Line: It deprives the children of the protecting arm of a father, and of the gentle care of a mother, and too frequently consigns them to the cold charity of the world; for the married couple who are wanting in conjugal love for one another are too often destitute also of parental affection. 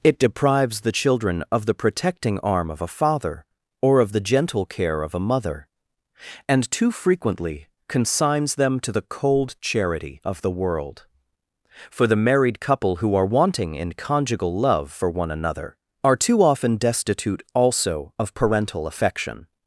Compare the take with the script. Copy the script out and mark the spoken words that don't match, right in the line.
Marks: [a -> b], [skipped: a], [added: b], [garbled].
It deprives the children of the protecting arm of a father, [and -> or] of the gentle care of a mother, and too frequently consigns them to the cold charity of the world; for the married couple who are wanting in conjugal love for one another are too often destitute also of parental affection.